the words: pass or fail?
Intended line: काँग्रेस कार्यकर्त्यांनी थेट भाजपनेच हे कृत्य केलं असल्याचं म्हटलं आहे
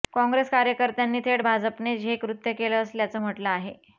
pass